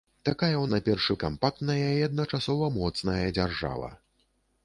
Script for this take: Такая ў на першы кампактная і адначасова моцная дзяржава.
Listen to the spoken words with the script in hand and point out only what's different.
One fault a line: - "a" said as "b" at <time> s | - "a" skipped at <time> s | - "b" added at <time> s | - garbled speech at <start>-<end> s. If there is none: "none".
none